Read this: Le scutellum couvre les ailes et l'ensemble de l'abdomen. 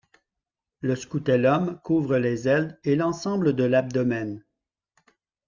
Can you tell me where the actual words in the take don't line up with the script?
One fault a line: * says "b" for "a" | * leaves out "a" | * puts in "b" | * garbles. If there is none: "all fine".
all fine